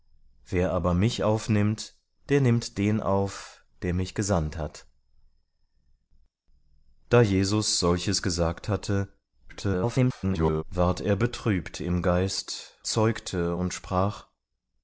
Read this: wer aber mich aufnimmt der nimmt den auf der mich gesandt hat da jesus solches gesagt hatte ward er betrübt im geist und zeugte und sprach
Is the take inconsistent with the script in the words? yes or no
yes